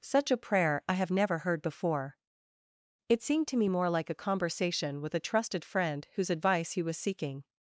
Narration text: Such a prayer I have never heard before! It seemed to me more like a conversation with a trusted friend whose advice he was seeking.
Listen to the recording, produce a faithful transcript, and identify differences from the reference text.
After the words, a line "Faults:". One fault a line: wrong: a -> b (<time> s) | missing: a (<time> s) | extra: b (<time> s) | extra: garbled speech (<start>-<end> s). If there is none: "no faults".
Such a prayer I have never heard before! It seemed to me more like a conversation with a trusted friend whose advice he was seeking.
Faults:
no faults